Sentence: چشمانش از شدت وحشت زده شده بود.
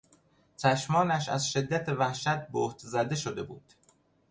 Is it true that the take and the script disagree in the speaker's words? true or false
true